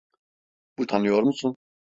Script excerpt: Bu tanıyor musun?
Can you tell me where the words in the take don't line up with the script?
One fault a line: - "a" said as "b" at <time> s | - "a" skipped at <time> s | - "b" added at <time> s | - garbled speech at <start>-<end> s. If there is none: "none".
none